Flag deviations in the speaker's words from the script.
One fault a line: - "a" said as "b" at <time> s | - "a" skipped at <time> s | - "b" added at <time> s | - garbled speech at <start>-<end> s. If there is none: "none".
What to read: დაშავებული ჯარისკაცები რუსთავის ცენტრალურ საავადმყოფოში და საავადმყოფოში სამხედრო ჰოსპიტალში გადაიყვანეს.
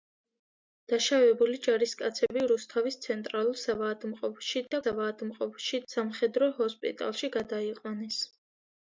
none